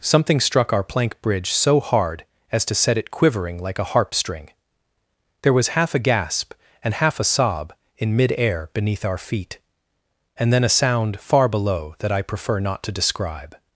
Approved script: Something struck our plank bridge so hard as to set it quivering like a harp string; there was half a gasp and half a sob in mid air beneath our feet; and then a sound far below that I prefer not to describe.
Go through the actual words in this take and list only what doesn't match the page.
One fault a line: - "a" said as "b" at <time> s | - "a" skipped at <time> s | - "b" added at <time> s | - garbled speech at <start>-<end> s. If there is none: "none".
none